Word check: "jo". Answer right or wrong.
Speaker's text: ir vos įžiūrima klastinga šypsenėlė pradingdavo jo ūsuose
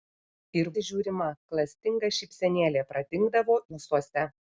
wrong